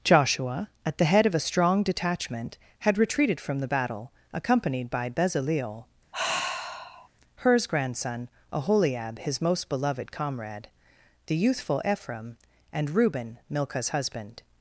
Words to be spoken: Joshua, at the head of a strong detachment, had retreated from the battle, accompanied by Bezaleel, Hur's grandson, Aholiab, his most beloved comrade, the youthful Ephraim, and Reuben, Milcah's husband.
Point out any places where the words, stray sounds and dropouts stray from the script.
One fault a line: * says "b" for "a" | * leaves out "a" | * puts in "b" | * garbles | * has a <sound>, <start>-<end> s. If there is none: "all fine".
* has a sigh, 6.1-7.1 s